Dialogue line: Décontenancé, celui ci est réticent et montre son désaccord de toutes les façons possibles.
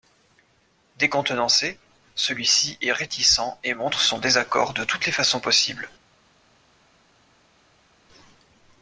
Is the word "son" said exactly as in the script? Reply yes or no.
yes